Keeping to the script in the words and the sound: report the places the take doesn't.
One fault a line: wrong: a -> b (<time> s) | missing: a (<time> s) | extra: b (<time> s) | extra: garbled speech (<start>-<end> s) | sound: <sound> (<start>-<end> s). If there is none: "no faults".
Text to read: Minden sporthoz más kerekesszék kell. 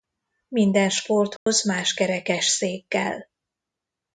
sound: dropout (1.4-1.5 s)